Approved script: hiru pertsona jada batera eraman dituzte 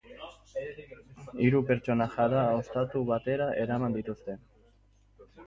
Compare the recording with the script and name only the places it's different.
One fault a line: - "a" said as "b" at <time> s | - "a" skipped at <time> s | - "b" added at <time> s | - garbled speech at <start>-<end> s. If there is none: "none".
- "ostatu" added at 2.6 s